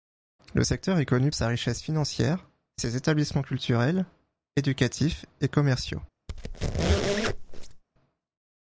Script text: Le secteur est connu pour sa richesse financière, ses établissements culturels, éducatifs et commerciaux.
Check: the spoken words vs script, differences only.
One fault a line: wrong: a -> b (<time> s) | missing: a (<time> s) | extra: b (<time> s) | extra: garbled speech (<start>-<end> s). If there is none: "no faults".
missing: pour (1.3 s)